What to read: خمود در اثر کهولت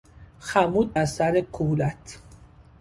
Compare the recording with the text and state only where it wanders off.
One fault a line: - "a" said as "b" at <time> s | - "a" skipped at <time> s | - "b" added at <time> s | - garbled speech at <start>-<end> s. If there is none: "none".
- "در" skipped at 0.9 s